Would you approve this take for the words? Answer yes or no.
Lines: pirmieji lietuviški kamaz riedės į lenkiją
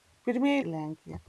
no